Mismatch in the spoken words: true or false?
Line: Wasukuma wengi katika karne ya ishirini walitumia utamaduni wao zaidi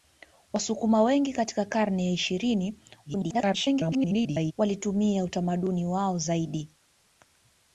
true